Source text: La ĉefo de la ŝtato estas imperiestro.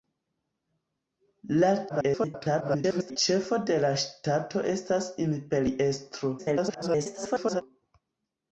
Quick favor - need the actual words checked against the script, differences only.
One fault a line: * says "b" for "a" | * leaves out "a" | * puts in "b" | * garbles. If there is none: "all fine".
* garbles
* garbles